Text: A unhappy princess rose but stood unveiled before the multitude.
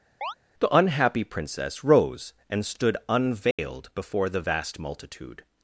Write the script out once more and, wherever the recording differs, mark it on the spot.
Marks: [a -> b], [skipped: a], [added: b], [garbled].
[A -> The] unhappy princess rose [but -> and] stood unveiled before the [added: vast] multitude.